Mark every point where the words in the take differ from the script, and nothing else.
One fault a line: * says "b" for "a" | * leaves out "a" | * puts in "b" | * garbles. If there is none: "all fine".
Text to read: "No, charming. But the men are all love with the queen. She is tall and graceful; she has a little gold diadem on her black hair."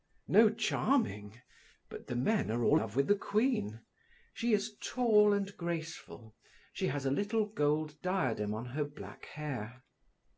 all fine